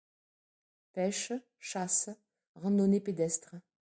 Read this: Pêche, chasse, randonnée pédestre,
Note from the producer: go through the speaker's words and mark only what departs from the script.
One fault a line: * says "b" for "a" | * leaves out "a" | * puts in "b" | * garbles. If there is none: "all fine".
all fine